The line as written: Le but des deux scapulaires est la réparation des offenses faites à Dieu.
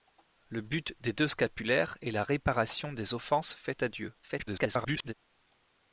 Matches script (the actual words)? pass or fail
fail